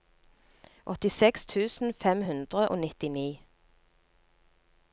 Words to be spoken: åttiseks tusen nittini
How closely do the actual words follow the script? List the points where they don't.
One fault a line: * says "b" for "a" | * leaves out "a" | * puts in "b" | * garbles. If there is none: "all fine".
* puts in "fem hundre og"